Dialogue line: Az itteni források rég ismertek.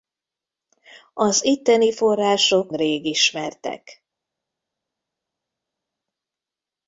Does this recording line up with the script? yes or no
yes